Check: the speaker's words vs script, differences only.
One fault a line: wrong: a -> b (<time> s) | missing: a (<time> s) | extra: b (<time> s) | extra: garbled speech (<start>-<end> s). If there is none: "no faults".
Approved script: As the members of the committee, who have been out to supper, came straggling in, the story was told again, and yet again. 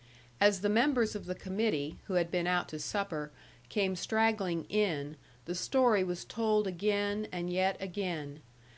wrong: have -> had (2.1 s)